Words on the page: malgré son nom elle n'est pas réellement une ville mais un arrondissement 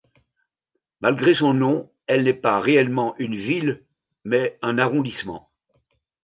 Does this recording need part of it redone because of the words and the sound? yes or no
no